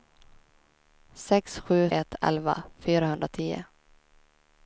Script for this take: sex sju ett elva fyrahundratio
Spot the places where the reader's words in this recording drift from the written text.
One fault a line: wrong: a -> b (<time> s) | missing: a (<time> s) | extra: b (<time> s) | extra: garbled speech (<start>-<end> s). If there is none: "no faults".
no faults